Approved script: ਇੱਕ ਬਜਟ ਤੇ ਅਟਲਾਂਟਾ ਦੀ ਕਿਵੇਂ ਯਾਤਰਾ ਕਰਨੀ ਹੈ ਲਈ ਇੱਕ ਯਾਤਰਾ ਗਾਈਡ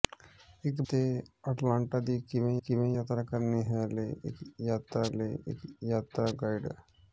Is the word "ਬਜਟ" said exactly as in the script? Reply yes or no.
no